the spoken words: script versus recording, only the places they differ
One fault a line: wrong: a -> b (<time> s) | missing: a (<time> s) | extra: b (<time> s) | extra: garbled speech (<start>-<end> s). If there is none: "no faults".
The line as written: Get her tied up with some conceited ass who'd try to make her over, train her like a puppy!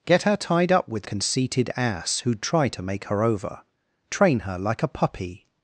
missing: some (1.1 s)